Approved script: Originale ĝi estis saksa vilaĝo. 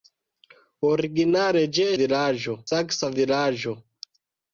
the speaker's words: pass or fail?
fail